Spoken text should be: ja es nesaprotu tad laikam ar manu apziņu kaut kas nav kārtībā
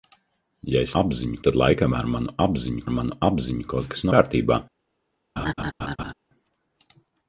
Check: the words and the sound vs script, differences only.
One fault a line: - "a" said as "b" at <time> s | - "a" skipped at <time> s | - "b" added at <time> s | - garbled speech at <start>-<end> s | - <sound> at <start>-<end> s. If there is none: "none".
- "nesaprotu" said as "apziņu" at 1.0 s
- "ar manu apziņu" added at 2.9 s
- "nav" skipped at 4.1 s
- laugh at 5.4-6.1 s